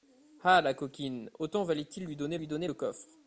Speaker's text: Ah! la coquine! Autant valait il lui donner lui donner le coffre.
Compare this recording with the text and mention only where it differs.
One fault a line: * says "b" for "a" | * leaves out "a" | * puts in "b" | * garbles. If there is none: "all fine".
all fine